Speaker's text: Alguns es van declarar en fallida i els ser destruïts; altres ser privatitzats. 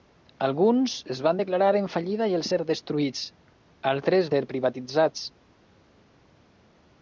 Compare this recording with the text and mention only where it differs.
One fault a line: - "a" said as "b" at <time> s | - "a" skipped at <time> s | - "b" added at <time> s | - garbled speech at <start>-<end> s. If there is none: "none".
none